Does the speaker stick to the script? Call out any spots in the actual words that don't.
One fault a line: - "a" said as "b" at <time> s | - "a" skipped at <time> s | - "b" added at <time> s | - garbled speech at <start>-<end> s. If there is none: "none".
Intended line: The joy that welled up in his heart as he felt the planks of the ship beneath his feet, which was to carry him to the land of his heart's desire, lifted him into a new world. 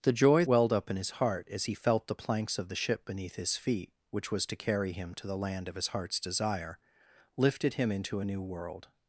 - "that" skipped at 0.5 s